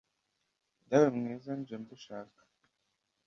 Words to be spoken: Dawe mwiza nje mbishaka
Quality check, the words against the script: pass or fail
pass